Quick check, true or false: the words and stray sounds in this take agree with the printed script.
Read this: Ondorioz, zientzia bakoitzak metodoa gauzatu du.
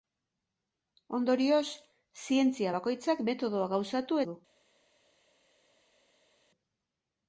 true